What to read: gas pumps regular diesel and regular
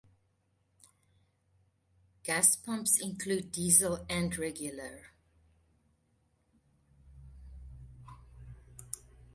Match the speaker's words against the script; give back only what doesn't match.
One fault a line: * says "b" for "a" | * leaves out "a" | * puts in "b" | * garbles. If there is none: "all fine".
* says "include" for "regular"